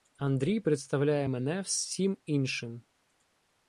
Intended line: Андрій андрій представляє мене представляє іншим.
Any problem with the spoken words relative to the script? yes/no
yes